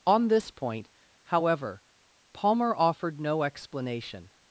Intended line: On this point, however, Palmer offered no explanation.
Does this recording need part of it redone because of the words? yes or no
no